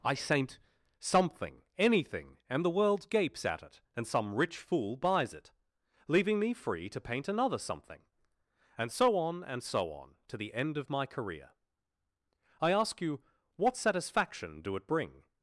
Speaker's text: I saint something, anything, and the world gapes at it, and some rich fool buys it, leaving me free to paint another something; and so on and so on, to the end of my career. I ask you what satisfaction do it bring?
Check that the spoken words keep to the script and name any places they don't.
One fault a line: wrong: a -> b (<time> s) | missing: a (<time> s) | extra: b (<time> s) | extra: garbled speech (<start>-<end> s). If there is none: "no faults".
no faults